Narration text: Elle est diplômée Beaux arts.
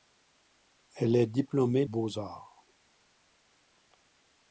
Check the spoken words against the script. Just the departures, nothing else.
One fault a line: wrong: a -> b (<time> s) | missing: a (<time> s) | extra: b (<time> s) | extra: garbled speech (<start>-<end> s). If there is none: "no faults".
no faults